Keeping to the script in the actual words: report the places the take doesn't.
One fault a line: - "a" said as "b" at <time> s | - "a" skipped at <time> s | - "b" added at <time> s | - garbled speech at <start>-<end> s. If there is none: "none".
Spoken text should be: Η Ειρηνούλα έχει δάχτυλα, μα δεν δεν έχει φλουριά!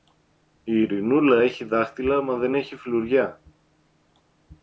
- "δεν" skipped at 2.6 s